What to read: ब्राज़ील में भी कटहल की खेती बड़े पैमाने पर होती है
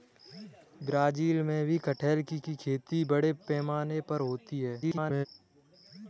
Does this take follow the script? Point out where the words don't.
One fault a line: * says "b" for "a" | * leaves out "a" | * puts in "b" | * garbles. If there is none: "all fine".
* puts in "की"
* garbles